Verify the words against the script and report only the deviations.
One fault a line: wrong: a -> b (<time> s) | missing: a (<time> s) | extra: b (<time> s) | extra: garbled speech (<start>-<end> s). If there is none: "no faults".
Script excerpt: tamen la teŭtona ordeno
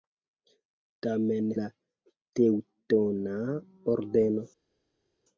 no faults